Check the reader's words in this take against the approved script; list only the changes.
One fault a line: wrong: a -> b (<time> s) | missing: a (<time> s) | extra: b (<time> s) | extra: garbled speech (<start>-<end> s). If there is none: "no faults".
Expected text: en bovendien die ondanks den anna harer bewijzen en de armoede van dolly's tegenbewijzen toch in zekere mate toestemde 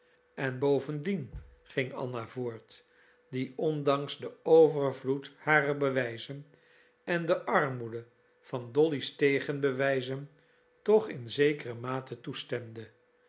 extra: ging anna voort (1.6 s)
wrong: anna -> overvloed (4.4 s)